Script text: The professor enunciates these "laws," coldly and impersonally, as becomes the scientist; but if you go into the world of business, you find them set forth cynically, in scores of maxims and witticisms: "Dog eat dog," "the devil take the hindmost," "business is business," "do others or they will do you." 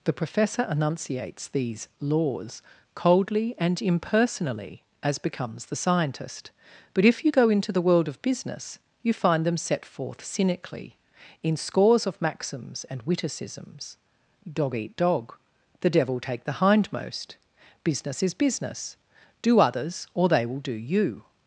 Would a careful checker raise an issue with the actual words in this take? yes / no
no